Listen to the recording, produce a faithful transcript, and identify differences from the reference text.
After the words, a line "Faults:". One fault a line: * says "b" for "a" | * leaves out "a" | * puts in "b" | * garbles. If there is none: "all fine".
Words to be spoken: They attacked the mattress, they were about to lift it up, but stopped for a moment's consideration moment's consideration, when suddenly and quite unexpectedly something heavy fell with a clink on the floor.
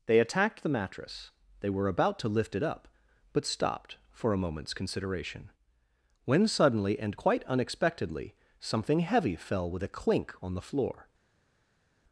They attacked the mattress, they were about to lift it up, but stopped for a moment's consideration, when suddenly and quite unexpectedly something heavy fell with a clink on the floor.
Faults:
* leaves out "moment's consideration"